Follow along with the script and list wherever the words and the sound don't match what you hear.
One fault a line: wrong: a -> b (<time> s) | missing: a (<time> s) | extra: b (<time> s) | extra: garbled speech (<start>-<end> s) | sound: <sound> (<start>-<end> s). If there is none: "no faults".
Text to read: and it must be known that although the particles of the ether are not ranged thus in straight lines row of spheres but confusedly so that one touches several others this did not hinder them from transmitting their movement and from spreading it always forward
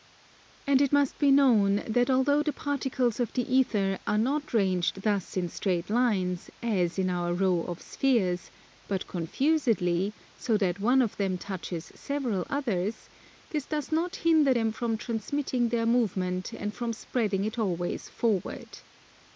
extra: as in our (6.6 s)
extra: of them (11.0 s)
wrong: did -> does (13.7 s)